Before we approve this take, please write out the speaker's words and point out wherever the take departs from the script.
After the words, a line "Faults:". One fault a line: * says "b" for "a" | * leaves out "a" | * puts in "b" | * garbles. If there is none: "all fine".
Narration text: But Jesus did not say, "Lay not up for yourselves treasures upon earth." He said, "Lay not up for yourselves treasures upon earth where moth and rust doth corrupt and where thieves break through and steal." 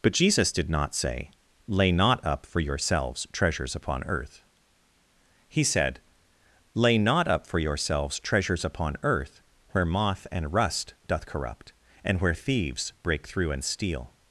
But Jesus did not say, "Lay not up for yourselves treasures upon earth." He said, "Lay not up for yourselves treasures upon earth where moth and rust doth corrupt and where thieves break through and steal."
Faults:
all fine